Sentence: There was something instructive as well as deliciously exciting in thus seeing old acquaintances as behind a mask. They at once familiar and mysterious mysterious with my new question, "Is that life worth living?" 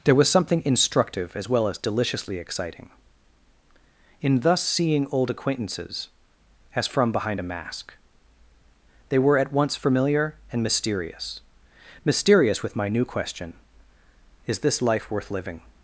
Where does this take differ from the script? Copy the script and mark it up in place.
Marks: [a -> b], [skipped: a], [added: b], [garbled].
There was something instructive as well as deliciously exciting in thus seeing old acquaintances as [added: from] behind a mask. They [added: were] at once familiar and mysterious mysterious with my new question, "Is [that -> this] life worth living?"